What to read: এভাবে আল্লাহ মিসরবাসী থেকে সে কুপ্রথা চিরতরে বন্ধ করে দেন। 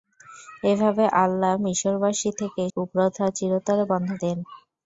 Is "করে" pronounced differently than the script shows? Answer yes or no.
yes